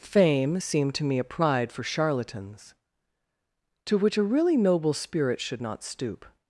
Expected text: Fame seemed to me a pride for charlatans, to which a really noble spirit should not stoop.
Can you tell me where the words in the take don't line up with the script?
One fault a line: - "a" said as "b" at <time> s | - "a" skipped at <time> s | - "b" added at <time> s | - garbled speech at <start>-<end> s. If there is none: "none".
none